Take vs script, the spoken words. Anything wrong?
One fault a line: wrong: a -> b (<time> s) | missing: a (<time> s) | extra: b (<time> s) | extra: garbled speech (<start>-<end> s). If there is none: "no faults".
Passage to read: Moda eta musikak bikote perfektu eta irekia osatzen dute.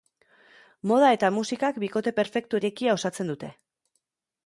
missing: eta (2.6 s)